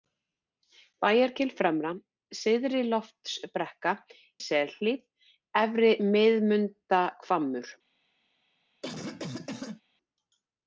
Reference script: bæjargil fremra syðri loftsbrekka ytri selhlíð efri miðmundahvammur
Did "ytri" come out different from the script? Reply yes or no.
yes